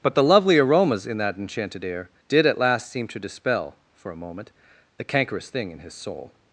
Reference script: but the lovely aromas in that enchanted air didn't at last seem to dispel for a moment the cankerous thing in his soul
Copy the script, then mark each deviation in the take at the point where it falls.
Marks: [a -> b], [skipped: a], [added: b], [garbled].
but the lovely aromas in that enchanted air [didn't -> did] at last seem to dispel for a moment the cankerous thing in his soul